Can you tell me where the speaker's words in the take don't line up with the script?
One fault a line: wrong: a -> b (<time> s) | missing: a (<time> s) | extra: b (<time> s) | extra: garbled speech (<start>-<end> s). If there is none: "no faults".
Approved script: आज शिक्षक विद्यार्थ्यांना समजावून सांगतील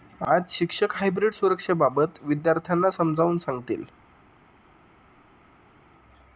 extra: हायब्रीड सुरक्षेबाबत (0.9 s)